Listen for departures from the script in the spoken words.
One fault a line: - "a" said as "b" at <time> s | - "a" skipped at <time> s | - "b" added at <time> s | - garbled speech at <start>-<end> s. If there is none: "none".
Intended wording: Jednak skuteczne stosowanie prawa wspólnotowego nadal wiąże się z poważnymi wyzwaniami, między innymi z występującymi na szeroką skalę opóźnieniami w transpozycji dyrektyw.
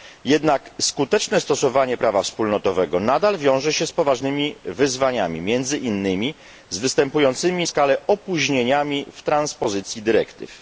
- "na szeroką" skipped at 7.7 s